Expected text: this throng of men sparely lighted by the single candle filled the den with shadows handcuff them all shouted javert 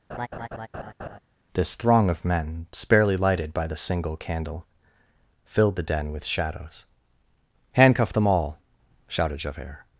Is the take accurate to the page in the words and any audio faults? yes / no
no